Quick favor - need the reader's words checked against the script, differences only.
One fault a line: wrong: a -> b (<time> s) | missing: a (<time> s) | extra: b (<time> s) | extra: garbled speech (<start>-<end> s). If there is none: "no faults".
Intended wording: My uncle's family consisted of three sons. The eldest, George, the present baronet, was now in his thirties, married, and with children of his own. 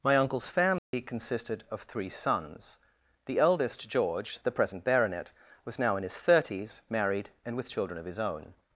no faults